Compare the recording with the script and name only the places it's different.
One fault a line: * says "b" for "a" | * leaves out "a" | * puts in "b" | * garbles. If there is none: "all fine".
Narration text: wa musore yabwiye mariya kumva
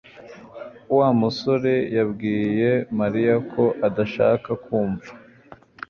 * puts in "ko adashaka"